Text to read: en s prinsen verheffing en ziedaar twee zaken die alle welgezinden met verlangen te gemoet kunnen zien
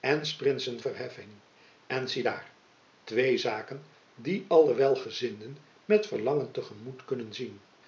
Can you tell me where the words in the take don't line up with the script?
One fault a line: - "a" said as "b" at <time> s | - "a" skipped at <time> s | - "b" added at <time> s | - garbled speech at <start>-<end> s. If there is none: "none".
none